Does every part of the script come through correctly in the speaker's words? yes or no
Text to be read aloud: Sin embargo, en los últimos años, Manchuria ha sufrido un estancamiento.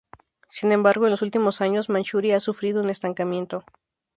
yes